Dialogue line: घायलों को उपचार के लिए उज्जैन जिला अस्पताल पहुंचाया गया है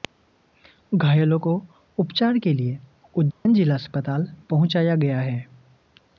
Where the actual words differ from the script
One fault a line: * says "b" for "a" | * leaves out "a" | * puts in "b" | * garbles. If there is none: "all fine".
all fine